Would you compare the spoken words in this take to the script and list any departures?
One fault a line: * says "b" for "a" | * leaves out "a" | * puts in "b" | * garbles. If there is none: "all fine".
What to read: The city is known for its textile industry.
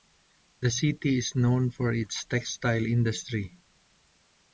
all fine